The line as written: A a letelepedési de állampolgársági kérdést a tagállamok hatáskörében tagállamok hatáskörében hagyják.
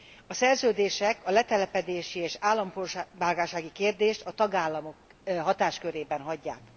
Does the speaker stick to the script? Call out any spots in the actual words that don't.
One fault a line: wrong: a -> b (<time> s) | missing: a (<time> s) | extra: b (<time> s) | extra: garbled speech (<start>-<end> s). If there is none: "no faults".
extra: szerződések (0.3 s)
wrong: de -> és (2.2 s)
missing: tagállamok hatáskörében (6.2 s)